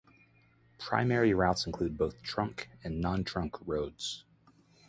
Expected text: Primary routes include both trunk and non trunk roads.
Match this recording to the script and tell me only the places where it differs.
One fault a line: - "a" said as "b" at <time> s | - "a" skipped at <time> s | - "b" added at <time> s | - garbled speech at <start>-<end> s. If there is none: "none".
none